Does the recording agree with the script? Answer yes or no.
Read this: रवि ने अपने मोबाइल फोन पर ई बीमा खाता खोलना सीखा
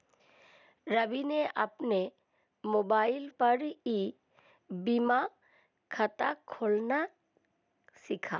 no